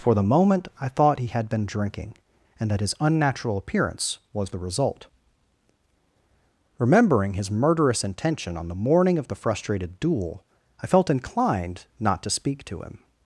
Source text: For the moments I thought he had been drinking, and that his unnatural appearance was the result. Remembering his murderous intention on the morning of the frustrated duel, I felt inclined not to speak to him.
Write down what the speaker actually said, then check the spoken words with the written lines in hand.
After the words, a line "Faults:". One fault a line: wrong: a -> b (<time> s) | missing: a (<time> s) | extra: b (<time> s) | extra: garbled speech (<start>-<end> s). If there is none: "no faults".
For the moment I thought he had been drinking, and that his unnatural appearance was the result. Remembering his murderous intention on the morning of the frustrated duel, I felt inclined not to speak to him.
Faults:
wrong: moments -> moment (0.2 s)